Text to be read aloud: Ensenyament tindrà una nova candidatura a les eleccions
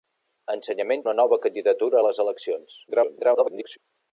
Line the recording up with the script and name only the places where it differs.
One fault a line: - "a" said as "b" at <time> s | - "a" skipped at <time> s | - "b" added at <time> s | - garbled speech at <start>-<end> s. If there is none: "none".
- "tindrà" skipped at 1.1 s
- garbled speech at 2.9-3.8 s